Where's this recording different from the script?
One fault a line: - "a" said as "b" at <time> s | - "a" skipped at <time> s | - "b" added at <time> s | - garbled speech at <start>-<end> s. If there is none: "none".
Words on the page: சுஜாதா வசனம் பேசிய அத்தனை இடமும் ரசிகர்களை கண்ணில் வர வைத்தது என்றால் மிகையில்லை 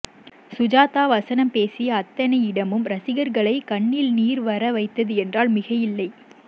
- "நீர்" added at 4.1 s